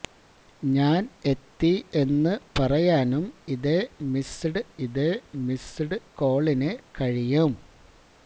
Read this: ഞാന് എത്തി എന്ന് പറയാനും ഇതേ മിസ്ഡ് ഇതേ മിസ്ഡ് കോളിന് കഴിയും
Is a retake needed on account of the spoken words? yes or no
no